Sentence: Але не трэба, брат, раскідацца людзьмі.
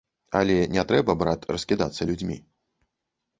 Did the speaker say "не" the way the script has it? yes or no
yes